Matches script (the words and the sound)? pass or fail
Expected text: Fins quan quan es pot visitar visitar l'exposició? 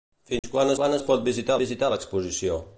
fail